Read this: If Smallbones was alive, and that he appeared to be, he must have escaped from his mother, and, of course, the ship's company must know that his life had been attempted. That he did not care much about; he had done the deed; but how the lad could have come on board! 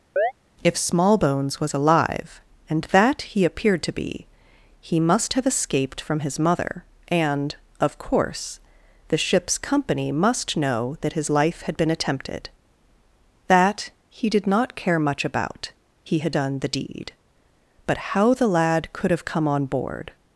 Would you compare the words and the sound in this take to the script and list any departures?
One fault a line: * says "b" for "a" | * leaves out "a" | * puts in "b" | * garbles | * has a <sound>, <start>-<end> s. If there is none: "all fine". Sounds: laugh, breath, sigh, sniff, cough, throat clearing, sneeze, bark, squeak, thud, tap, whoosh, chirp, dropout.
* has a chirp, 0.2-0.3 s